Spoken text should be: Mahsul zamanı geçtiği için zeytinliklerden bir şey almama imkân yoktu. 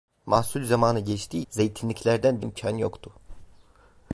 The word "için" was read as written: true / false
false